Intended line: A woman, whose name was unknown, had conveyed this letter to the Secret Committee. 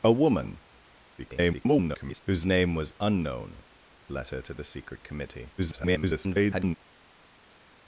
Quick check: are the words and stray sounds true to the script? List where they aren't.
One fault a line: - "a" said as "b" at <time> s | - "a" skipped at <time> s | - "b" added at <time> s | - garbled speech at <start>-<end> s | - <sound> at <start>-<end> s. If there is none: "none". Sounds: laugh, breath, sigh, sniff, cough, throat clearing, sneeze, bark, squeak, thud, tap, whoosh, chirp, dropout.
- garbled speech at 1.2-2.2 s
- "had conveyed this" skipped at 3.6 s
- garbled speech at 5.6-6.8 s